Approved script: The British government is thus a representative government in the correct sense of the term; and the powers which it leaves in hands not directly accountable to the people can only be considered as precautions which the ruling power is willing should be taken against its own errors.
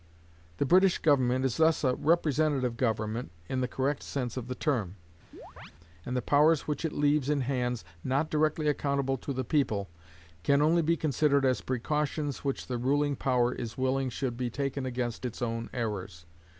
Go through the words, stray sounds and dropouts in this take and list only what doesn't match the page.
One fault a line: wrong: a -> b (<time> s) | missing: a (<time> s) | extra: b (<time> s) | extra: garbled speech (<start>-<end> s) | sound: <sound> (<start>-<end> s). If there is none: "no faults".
sound: chirp (5.3-5.7 s)